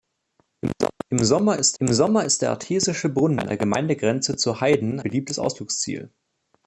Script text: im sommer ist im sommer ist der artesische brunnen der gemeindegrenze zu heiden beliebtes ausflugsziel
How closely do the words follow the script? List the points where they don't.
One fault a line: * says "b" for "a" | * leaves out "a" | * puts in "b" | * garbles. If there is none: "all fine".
all fine